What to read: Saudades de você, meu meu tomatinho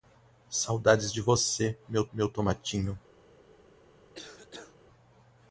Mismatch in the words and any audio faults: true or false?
true